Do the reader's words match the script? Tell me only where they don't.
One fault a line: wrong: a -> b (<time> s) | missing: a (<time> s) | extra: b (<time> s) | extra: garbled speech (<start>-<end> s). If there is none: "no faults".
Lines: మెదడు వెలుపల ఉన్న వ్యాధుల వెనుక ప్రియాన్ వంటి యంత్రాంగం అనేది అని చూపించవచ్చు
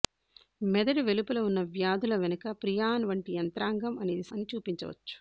no faults